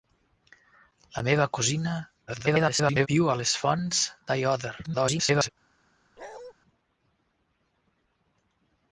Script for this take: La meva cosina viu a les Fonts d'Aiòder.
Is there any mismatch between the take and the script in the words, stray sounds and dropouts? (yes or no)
yes